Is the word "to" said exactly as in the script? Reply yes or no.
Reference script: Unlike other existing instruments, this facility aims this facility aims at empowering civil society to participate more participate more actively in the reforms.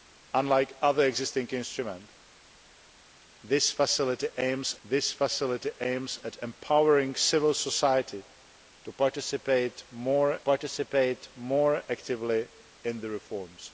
yes